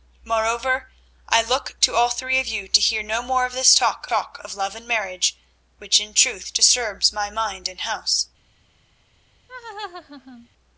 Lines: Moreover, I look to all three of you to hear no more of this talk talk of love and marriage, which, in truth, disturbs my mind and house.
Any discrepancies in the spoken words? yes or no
no